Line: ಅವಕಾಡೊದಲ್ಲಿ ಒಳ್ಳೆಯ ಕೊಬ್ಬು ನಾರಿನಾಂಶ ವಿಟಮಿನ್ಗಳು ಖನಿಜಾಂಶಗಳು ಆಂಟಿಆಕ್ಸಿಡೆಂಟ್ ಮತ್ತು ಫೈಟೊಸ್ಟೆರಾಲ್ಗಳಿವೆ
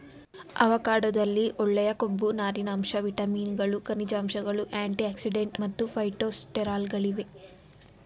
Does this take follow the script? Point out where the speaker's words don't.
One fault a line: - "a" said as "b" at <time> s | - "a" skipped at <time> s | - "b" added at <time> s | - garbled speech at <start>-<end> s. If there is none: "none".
none